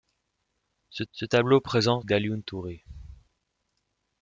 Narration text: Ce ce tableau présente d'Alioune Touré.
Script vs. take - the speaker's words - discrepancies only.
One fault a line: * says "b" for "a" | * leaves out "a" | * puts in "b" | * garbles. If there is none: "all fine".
all fine